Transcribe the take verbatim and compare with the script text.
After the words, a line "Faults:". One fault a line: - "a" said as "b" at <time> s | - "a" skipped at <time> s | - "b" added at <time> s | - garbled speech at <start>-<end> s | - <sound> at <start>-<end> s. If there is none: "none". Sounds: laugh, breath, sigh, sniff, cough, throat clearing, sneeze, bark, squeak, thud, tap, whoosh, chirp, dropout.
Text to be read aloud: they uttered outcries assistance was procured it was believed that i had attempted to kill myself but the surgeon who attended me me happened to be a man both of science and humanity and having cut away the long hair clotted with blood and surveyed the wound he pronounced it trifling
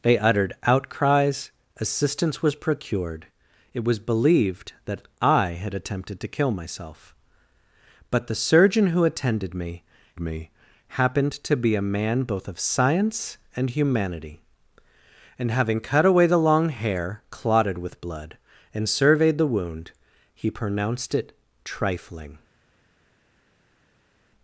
they uttered outcries assistance was procured it was believed that i had attempted to kill myself but the surgeon who attended me me happened to be a man both of science and humanity and having cut away the long hair clotted with blood and surveyed the wound he pronounced it trifling
Faults:
none